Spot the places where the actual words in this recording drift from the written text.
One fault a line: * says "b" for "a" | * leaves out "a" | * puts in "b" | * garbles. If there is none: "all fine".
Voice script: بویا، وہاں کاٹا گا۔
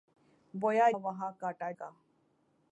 all fine